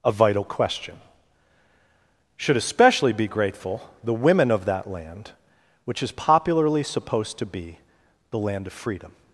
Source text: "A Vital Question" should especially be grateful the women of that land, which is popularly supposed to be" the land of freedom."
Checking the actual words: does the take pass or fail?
pass